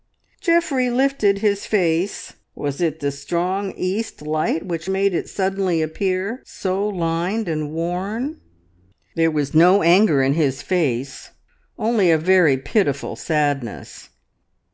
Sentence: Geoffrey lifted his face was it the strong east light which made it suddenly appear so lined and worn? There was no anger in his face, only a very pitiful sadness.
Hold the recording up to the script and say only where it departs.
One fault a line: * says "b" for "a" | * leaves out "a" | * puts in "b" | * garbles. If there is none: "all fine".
all fine